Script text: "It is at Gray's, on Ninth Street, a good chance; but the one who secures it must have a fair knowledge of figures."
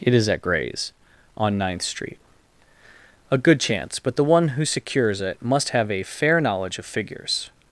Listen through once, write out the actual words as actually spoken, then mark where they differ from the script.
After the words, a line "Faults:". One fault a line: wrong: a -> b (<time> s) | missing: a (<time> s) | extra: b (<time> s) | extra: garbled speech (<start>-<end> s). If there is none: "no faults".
"It is at Gray's, on Ninth Street, a good chance; but the one who secures it must have a fair knowledge of figures."
Faults:
no faults